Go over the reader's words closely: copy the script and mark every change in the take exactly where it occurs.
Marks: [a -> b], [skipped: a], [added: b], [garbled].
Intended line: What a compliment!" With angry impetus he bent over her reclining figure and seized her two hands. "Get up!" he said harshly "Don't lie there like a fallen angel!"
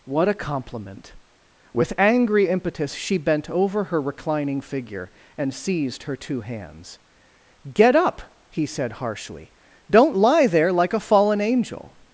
What a compliment!" With angry impetus [he -> she] bent over her reclining figure and seized her two hands. "Get up!" he said harshly "Don't lie there like a fallen angel!"